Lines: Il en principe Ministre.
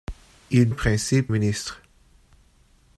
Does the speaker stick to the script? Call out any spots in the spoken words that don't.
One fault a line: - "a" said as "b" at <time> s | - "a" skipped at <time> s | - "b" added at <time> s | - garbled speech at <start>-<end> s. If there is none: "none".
none